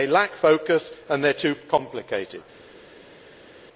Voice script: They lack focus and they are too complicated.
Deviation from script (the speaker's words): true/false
false